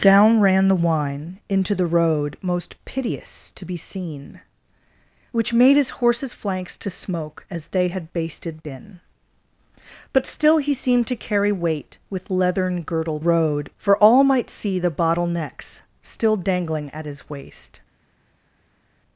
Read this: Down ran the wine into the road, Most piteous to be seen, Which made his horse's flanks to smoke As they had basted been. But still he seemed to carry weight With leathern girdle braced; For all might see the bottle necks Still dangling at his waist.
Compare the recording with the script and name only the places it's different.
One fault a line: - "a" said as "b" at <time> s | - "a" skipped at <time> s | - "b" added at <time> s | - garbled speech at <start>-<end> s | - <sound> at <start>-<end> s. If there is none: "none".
- "braced" said as "road" at 13.2 s